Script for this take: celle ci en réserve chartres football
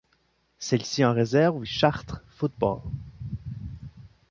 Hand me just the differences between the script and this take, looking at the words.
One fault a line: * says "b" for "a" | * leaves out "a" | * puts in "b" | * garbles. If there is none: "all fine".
all fine